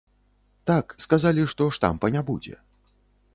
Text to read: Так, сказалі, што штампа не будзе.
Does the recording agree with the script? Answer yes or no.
yes